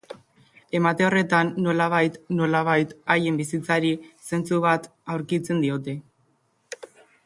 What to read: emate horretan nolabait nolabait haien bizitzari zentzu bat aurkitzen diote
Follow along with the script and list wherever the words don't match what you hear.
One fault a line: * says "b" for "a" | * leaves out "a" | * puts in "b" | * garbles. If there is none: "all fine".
all fine